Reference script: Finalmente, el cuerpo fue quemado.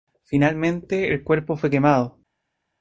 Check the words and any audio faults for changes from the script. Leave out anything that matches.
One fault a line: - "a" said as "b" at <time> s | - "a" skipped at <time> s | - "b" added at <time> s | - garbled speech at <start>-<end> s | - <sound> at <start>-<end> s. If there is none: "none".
none